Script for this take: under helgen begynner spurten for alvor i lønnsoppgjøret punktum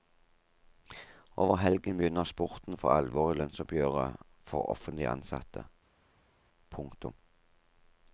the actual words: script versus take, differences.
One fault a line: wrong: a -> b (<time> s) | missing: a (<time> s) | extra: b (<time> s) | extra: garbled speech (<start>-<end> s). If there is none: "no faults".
wrong: under -> over (1.4 s)
extra: for offentlig ansatte (4.5 s)